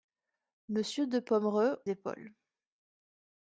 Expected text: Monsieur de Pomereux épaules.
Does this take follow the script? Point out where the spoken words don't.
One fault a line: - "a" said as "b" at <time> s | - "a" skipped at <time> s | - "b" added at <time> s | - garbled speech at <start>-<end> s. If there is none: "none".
none